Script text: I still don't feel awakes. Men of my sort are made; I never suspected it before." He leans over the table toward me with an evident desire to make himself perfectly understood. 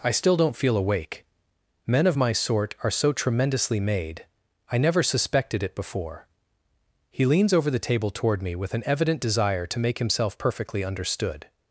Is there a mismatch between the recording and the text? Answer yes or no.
yes